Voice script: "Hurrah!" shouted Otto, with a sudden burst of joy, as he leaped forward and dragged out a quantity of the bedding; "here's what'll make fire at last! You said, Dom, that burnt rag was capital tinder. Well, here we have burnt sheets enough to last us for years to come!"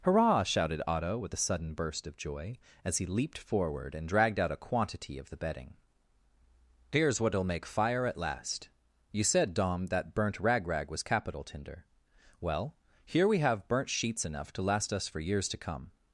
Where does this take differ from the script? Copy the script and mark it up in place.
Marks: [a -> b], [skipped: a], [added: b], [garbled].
"Hurrah!" shouted Otto, with a sudden burst of joy, as he leaped forward and dragged out a quantity of the bedding; "here's what'll make fire at last! You said, Dom, that burnt rag [added: rag] was capital tinder. Well, here we have burnt sheets enough to last us for years to come!"